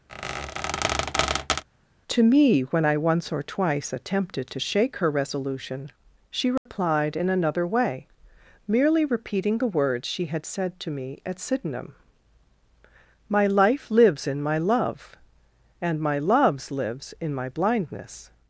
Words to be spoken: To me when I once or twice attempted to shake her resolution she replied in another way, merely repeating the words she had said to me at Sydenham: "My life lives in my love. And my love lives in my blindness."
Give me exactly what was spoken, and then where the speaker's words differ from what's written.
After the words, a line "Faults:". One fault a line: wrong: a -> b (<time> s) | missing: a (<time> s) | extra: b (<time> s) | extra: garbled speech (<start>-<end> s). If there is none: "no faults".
To me when I once or twice attempted to shake her resolution she replied in another way, merely repeating the words she had said to me at Sydenham: "My life lives in my love. And my loves lives in my blindness."
Faults:
wrong: love -> loves (16.2 s)